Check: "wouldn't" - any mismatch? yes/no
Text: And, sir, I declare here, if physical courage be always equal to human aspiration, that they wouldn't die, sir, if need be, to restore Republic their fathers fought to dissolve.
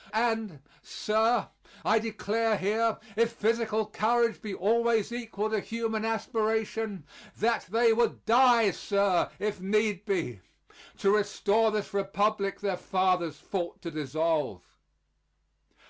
yes